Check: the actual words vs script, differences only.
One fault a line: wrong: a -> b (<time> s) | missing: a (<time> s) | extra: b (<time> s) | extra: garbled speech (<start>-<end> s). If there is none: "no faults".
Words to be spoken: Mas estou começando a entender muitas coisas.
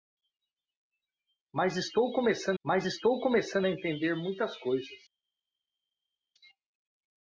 extra: mas estou começando (2.6 s)